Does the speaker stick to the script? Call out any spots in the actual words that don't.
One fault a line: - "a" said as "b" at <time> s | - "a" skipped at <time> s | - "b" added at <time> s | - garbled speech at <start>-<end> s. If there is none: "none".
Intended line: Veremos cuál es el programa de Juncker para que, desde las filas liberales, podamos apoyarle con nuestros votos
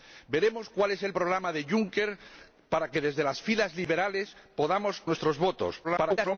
- "apoyarle con" skipped at 5.0 s
- garbled speech at 5.8-6.4 s